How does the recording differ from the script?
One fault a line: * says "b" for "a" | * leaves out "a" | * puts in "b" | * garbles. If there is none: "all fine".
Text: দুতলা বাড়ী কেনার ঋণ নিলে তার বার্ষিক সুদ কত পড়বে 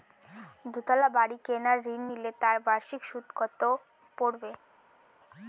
all fine